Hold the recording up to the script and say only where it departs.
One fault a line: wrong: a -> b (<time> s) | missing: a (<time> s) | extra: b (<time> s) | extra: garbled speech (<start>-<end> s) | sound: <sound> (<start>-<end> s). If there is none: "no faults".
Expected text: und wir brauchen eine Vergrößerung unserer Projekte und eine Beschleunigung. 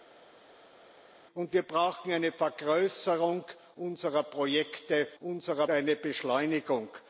wrong: und -> unserer (5.2 s)